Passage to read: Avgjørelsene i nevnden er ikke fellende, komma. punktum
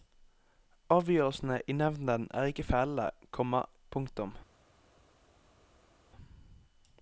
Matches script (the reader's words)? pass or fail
pass